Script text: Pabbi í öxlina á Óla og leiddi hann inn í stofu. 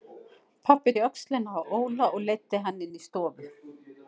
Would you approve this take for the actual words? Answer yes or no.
yes